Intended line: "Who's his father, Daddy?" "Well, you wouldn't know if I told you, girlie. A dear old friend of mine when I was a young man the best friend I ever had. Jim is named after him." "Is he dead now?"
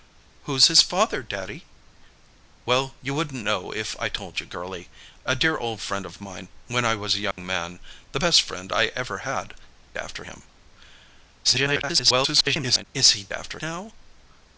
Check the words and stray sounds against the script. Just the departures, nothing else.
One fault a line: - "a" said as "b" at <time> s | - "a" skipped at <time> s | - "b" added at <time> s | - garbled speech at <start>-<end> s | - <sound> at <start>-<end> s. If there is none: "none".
- dropout at 7.3-7.4 s
- "Jim is named" skipped at 9.5 s
- garbled speech at 11.4-12.8 s
- "dead" said as "after" at 13.3 s